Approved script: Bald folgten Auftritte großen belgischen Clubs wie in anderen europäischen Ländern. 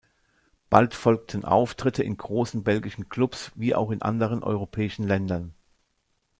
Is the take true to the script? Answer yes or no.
no